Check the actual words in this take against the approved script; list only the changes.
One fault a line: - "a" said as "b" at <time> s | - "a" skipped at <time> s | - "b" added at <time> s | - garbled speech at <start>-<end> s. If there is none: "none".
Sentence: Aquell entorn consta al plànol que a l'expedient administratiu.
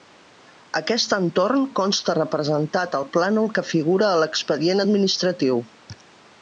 - "Aquell" said as "Aquest" at 0.8 s
- "representat" added at 2.2 s
- "figura" added at 3.7 s